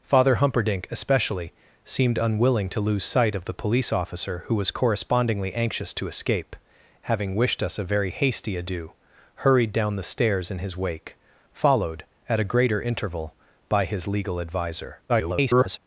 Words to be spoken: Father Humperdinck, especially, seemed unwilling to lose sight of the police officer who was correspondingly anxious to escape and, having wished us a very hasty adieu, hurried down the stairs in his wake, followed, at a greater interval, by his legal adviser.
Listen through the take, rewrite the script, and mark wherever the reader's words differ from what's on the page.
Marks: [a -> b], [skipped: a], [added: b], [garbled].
Father Humperdinck, especially, seemed unwilling to lose sight of the police officer who was correspondingly anxious to escape [skipped: and,] having wished us a very hasty adieu, hurried down the stairs in his wake, followed, at a greater interval, by his legal adviser. [garbled]